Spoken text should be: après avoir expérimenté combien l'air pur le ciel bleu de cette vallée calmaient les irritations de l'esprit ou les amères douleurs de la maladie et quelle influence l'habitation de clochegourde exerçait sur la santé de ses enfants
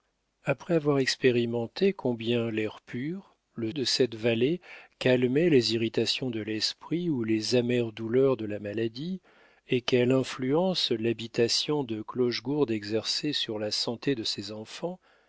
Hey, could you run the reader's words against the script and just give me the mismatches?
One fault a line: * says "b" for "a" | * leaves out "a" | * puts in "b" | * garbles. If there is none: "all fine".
* leaves out "ciel bleu"